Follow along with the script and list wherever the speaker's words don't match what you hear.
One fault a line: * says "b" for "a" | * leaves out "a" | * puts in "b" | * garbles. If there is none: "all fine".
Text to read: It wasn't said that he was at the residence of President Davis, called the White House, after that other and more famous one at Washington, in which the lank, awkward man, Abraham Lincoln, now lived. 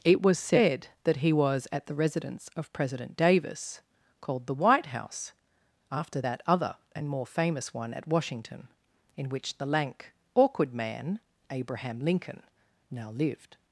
* says "was" for "wasn't"